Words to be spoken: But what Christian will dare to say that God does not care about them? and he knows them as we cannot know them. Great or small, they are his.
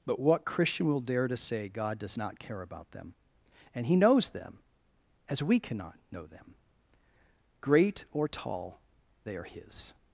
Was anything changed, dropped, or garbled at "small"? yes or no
yes